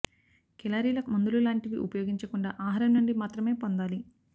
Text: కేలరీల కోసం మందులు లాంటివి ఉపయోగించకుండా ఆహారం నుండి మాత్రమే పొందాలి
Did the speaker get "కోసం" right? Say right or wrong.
wrong